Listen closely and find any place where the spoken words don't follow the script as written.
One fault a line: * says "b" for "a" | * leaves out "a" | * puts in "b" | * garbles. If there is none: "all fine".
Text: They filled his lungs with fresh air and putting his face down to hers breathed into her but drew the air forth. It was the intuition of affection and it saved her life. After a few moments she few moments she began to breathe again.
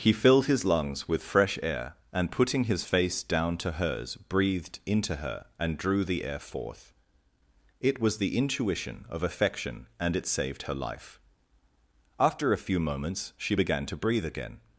* says "He" for "They"
* says "and" for "but"
* leaves out "few moments she"